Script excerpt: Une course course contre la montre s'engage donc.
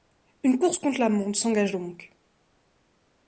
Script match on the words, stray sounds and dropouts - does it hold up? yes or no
no